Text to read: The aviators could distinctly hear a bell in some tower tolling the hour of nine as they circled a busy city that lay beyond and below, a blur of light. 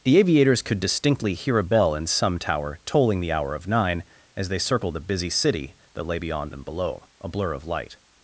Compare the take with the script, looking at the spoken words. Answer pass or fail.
pass